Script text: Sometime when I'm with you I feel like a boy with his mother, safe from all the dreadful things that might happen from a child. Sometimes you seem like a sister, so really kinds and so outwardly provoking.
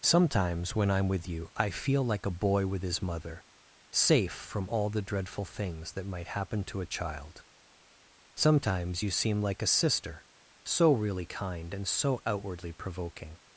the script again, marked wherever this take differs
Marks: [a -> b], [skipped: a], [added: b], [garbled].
[Sometime -> Sometimes] when I'm with you I feel like a boy with his mother, safe from all the dreadful things that might happen [from -> to] a child. Sometimes you seem like a sister, so really [kinds -> kind] and so outwardly provoking.